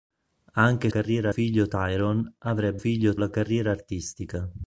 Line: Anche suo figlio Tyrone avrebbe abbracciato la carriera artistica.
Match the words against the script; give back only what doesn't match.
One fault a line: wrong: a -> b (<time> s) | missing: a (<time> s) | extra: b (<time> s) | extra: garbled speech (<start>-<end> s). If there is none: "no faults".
wrong: suo -> carriera (0.9 s)
wrong: abbracciato -> figlio (2.8 s)